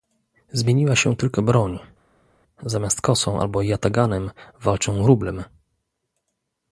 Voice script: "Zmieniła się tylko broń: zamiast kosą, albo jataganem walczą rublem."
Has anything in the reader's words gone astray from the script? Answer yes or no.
no